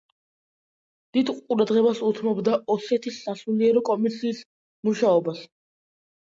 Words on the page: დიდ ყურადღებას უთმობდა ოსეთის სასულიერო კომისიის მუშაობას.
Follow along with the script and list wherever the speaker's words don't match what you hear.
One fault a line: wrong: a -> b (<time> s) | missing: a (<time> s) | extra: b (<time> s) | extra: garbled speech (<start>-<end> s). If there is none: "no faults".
no faults